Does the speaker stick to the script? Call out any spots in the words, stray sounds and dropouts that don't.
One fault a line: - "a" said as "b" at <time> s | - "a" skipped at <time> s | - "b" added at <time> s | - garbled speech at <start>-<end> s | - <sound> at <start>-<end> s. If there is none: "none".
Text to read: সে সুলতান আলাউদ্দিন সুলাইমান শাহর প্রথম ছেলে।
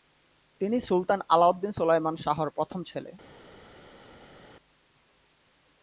- "সে" said as "তিনি" at 0.6 s